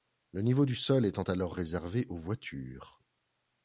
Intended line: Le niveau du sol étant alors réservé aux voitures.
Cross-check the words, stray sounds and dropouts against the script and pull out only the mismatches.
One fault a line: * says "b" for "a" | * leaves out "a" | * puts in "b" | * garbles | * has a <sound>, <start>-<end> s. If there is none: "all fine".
all fine